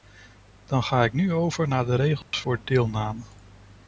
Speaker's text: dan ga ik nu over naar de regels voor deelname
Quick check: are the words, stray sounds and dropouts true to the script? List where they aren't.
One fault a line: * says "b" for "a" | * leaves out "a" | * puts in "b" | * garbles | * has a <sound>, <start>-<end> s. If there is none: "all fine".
* has a dropout, 2.2-2.3 s